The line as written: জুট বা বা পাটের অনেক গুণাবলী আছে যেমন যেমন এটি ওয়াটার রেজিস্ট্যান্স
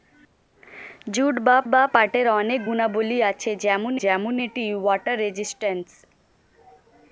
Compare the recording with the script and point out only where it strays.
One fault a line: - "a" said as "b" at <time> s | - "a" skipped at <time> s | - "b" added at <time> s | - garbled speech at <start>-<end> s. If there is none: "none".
none